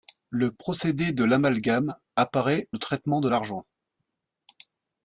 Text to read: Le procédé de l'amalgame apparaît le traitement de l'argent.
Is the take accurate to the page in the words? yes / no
yes